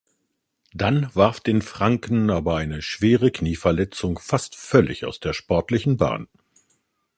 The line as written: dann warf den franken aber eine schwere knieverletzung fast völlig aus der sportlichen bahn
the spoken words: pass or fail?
pass